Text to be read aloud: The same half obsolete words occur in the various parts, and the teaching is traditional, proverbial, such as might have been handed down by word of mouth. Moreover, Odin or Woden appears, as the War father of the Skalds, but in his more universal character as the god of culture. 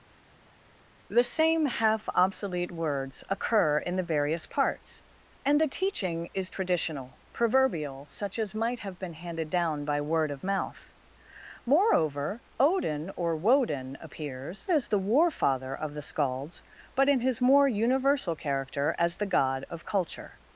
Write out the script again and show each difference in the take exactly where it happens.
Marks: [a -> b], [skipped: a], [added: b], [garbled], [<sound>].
The same half obsolete words occur in the various parts, and the teaching is traditional, proverbial, such as might have been handed down by word of mouth. Moreover, Odin or Woden appears, as the War father of the Skalds, but in his more universal character as the god of culture.